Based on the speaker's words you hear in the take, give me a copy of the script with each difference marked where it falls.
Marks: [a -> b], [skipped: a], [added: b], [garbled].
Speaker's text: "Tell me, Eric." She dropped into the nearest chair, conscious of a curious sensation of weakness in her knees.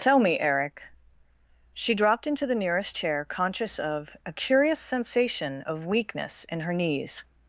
"Tell me, Eric." She dropped into the nearest chair, conscious of a curious sensation of weakness in her knees.